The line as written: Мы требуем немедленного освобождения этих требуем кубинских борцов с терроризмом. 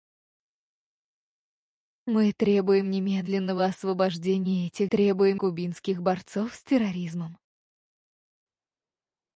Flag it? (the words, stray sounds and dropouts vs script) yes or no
no